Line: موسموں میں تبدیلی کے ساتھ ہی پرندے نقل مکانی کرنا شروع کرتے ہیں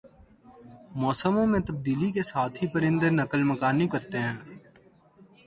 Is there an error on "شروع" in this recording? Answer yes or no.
yes